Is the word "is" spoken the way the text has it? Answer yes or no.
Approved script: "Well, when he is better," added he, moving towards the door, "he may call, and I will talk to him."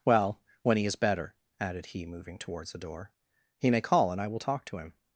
yes